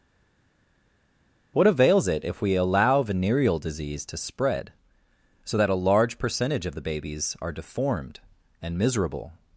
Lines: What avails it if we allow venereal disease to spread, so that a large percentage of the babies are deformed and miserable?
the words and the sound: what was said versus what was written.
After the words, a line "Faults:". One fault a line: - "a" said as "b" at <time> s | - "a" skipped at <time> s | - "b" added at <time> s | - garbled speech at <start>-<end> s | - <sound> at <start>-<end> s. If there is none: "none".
What avails it if we allow venereal disease to spread, so that a large percentage of the babies are deformed and miserable?
Faults:
none